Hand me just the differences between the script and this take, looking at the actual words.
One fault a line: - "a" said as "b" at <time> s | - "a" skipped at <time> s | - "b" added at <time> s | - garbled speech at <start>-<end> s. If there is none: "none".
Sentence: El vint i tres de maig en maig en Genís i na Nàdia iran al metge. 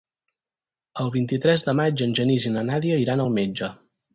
- "maig en" skipped at 2.2 s